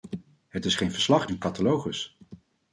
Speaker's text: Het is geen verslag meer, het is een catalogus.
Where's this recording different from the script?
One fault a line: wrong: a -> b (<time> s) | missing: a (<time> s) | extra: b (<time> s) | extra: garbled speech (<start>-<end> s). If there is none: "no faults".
missing: meer het is (1.3 s)